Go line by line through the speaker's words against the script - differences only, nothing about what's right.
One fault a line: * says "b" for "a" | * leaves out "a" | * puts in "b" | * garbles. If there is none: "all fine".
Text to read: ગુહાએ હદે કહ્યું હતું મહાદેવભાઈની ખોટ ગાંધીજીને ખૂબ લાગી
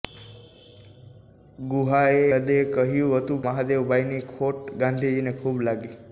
all fine